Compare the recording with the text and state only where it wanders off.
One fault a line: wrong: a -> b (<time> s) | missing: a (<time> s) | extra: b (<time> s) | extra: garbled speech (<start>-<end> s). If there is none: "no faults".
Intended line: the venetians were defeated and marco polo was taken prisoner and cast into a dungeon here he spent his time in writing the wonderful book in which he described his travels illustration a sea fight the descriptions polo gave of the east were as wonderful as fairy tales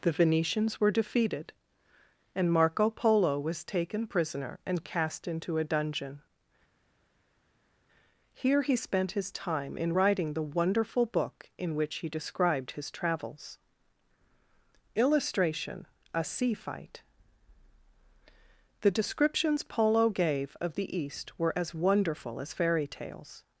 no faults